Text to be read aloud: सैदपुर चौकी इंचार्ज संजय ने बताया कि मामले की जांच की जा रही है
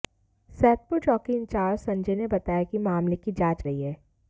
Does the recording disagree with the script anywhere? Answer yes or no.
yes